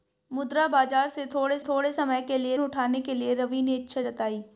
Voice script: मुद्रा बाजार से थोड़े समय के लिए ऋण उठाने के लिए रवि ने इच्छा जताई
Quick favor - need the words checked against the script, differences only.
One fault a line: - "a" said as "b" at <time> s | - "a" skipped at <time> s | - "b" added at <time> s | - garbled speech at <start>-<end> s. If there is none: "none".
- "थोड़े" added at 1.6 s
- "ऋण" skipped at 2.6 s